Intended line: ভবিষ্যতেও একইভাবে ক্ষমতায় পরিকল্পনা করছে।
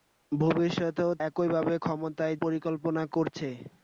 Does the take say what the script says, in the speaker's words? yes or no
yes